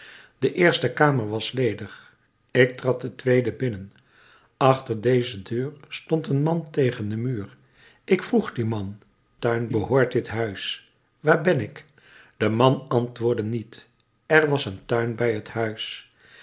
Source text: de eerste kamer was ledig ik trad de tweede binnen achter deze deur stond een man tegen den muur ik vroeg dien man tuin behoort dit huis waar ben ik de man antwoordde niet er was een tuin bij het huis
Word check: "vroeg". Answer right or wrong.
right